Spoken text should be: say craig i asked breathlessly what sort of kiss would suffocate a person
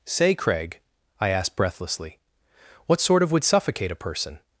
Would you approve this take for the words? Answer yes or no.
no